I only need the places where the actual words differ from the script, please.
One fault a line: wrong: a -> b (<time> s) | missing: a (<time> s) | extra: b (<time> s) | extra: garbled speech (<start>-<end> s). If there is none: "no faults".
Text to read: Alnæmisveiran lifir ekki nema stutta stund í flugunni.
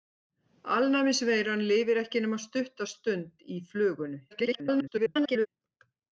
extra: garbled speech (4.3-5.5 s)